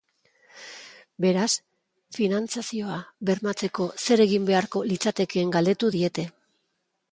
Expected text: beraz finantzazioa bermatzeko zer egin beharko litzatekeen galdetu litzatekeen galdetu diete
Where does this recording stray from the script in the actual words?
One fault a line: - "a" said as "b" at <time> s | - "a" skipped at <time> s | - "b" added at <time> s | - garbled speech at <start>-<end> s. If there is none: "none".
- "litzatekeen galdetu" skipped at 5.9 s